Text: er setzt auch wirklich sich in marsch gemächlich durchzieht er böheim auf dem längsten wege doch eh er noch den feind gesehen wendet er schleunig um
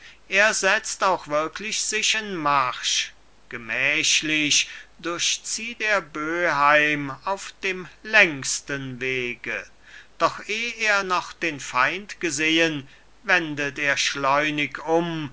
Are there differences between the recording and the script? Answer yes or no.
no